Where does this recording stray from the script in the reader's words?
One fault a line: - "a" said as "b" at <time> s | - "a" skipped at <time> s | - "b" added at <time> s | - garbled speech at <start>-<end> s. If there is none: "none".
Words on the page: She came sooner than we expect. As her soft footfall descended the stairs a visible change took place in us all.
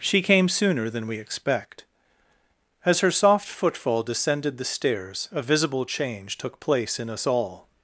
none